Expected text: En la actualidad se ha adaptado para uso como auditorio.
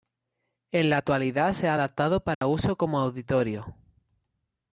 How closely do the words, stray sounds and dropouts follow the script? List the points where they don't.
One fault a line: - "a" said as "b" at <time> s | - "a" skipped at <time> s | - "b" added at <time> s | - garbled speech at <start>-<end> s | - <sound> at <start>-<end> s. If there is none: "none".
- dropout at 2.3-2.4 s